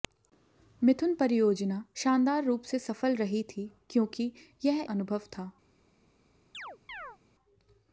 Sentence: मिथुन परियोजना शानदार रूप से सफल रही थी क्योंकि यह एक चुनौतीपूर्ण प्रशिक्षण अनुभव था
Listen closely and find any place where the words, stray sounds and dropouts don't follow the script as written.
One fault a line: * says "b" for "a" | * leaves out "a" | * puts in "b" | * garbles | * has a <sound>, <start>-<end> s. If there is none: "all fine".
* leaves out "एक चुनौतीपूर्ण प्रशिक्षण"
* has a chirp, 6.5-7.2 s